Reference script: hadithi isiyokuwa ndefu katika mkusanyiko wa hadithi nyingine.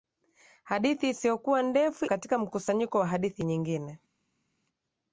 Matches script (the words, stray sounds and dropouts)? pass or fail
pass